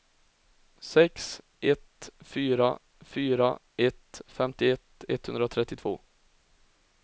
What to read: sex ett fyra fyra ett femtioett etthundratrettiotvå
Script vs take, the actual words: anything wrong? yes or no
no